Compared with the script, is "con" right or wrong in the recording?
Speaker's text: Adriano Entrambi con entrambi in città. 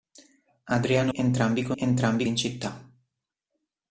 right